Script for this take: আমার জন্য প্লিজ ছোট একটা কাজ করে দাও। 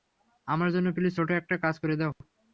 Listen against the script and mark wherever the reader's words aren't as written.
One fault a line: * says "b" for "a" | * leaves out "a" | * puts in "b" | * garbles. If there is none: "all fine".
all fine